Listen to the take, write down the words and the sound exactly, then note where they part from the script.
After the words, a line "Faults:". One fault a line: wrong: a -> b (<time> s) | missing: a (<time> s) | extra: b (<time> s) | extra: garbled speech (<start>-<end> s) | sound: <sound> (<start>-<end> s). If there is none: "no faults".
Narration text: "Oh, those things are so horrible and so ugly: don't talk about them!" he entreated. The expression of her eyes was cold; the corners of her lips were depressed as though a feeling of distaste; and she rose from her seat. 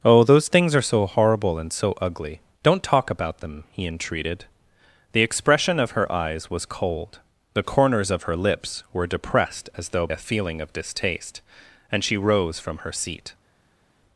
"Oh, those things are so horrible and so ugly: don't talk about them!" he entreated. The expression of her eyes was cold; the corners of her lips were depressed as though a feeling of distaste; and she rose from her seat.
Faults:
no faults